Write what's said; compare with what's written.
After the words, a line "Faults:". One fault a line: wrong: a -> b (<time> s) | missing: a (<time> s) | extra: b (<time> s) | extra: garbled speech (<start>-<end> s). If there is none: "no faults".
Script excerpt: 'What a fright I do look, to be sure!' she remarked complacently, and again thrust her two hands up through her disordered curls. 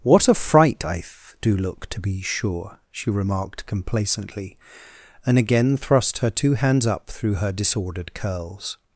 'What a fright I th do look, to be sure!' she remarked complacently, and again thrust her two hands up through her disordered curls.
Faults:
extra: th (1.0 s)